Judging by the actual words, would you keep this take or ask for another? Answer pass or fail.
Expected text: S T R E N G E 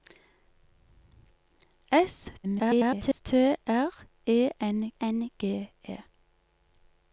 fail